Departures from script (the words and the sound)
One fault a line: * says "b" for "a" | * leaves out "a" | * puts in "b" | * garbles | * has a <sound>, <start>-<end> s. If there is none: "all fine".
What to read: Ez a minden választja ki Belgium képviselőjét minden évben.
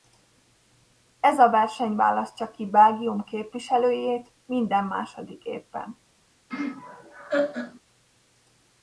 * says "verseny" for "minden"
* puts in "második"
* has a laugh, 6.5-7.8 s